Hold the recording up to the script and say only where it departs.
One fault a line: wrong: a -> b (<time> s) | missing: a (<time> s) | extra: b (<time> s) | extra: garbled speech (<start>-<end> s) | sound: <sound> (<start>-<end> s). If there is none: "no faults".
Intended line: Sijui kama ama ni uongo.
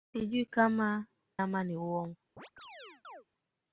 sound: chirp (2.4-3.2 s)